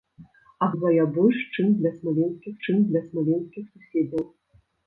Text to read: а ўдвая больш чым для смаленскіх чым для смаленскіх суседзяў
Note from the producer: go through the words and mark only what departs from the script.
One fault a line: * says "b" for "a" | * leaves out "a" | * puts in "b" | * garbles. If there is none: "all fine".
all fine